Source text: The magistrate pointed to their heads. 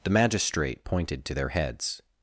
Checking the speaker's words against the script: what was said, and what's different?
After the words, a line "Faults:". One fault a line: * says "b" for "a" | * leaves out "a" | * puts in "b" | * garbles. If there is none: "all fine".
The magistrate pointed to their heads.
Faults:
all fine